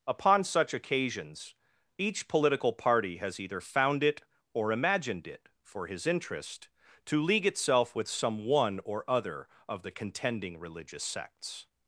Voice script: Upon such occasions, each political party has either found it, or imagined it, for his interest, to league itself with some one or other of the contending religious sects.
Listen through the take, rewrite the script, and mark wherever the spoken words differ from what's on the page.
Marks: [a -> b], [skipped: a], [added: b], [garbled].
Upon such occasions, each political party has either found it, or imagined it, for his interest, to league itself with some one or other of the contending religious sects.